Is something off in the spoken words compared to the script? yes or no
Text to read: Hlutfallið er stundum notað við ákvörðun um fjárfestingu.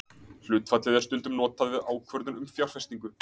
no